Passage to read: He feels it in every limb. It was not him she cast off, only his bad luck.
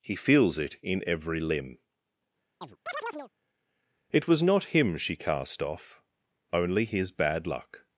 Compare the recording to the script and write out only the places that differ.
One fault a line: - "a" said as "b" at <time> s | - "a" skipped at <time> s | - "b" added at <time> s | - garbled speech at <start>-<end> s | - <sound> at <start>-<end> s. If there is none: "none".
- chirp at 2.6-3.3 s